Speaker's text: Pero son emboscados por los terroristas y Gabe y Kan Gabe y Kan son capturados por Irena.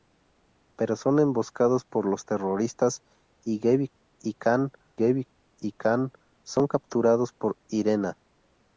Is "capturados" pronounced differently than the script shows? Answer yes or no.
no